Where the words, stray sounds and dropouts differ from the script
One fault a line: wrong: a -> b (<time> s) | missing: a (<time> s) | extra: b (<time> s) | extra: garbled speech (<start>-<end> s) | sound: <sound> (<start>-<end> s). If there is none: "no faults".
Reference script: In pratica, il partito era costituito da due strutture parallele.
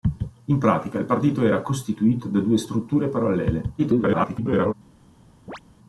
extra: garbled speech (3.8-4.7 s)
sound: chirp (5.5-5.6 s)